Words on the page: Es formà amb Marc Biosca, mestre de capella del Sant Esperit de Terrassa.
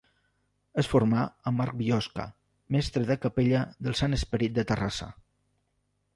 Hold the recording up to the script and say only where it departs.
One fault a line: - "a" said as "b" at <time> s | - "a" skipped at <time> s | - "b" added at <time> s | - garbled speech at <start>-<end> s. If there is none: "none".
none